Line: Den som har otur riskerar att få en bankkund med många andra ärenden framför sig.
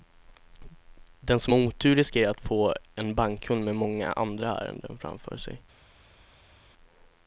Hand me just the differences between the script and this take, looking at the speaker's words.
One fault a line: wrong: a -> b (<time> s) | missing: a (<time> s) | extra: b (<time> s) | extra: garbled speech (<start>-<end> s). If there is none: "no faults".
no faults